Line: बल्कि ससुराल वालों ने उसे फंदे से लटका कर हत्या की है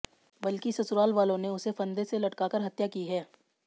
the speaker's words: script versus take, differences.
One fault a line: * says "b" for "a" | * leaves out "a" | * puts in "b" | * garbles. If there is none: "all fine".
all fine